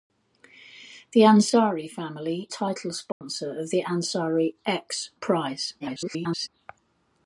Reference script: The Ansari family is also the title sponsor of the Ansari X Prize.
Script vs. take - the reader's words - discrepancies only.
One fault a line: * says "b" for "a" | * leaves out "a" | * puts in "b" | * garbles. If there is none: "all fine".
* leaves out "is also the"
* garbles